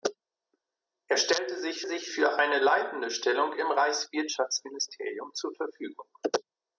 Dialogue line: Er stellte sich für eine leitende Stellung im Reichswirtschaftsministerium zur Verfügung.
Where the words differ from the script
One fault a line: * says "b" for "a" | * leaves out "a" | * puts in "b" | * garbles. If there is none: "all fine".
* puts in "sich"